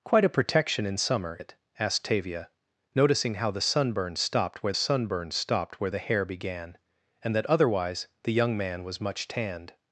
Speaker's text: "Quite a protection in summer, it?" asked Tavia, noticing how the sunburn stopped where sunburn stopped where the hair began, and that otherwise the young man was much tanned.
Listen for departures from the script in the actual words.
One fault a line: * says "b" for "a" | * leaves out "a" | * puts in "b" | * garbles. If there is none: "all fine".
all fine